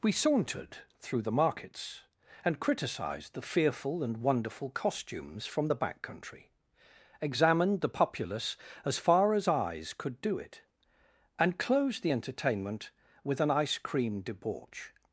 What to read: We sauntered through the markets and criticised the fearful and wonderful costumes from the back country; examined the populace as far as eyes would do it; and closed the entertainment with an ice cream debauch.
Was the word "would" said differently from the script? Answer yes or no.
yes